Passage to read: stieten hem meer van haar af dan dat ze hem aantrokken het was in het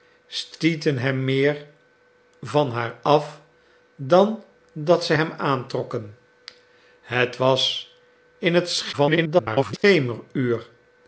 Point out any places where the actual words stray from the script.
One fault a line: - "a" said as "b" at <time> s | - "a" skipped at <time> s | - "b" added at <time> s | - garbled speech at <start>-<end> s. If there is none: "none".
- garbled speech at 8.9-9.8 s